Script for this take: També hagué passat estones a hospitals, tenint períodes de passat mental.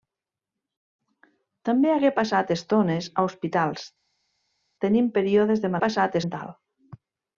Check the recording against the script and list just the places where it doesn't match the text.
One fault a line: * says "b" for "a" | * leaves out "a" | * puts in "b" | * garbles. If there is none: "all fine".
all fine